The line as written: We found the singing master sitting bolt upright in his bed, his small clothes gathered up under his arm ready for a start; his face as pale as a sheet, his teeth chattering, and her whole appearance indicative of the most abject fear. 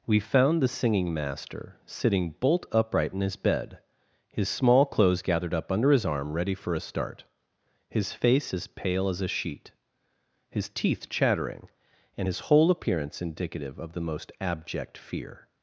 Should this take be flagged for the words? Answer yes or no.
yes